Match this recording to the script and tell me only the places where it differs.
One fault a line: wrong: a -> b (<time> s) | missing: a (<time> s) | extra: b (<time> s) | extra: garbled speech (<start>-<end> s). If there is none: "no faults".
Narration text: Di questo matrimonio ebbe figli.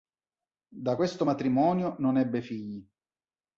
wrong: Di -> Da (0.7 s)
extra: non (2.0 s)